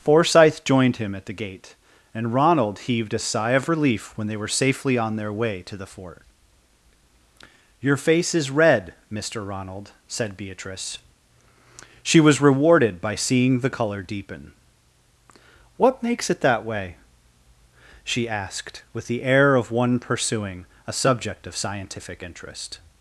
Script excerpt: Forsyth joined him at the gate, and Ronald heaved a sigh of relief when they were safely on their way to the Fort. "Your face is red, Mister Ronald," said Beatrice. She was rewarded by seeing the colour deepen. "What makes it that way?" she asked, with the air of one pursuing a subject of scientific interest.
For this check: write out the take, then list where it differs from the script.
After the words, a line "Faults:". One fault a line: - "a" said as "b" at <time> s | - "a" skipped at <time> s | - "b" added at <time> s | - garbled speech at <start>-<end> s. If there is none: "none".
Forsyth joined him at the gate, and Ronald heaved a sigh of relief when they were safely on their way to the Fort. "Your face is red, Mister Ronald," said Beatrice. She was rewarded by seeing the colour deepen. "What makes it that way?" she asked, with the air of one pursuing a subject of scientific interest.
Faults:
none